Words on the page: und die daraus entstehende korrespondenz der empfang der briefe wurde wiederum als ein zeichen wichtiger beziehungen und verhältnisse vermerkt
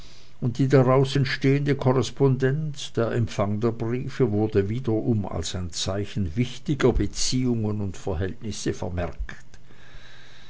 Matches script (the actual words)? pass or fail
pass